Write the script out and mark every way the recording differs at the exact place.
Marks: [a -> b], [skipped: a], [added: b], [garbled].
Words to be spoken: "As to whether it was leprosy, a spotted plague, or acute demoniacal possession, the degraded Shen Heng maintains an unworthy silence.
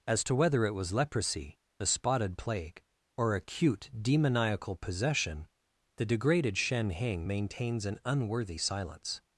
"As to whether it was leprosy, a spotted plague, or acute demoniacal possession, the degraded Shen Heng maintains an unworthy silence.